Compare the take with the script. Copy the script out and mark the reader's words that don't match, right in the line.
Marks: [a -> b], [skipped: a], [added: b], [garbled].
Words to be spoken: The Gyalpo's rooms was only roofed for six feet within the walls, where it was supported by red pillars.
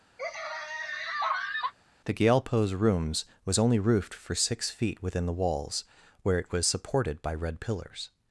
The Gyalpo's rooms was only roofed for six feet within the walls, where it was supported by red pillars.